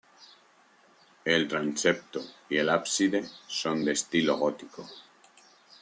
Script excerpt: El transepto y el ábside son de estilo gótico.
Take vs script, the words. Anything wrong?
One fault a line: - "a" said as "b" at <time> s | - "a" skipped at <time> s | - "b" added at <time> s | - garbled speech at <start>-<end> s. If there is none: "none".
none